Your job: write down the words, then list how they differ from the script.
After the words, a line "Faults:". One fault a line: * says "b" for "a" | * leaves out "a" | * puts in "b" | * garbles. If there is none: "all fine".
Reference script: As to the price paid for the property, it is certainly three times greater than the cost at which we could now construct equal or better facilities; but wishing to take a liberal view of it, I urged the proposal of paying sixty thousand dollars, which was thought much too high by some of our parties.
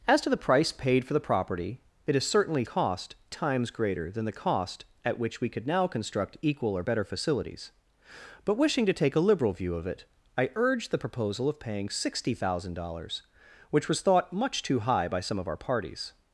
As to the price paid for the property, it is certainly cost times greater than the cost at which we could now construct equal or better facilities; but wishing to take a liberal view of it, I urged the proposal of paying sixty thousand dollars, which was thought much too high by some of our parties.
Faults:
* says "cost" for "three"